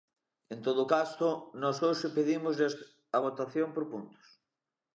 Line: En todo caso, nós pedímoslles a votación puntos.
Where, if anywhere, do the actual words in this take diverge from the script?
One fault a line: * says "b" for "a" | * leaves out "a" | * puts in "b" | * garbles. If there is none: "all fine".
* puts in "hoxe"
* puts in "por"